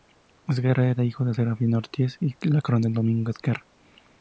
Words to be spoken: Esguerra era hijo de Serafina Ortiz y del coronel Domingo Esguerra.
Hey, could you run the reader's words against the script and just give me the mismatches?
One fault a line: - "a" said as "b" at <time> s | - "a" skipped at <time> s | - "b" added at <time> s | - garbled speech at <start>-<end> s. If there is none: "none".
none